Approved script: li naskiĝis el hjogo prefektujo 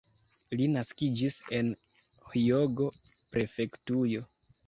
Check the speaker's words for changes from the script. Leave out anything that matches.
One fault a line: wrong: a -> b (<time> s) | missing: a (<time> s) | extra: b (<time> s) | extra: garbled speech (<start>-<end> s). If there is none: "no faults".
wrong: el -> en (1.6 s)